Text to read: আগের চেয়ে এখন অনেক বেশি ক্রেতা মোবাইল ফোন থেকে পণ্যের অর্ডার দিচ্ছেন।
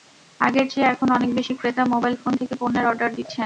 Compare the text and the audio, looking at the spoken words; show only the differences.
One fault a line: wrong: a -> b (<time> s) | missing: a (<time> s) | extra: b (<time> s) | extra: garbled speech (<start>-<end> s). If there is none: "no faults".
no faults